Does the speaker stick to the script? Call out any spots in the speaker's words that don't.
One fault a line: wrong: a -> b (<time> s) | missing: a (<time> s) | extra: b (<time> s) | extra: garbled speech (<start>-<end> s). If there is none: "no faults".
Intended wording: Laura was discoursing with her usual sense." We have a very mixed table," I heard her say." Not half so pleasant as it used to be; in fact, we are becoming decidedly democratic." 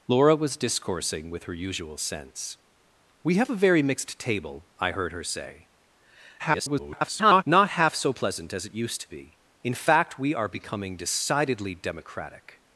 extra: garbled speech (6.4-7.4 s)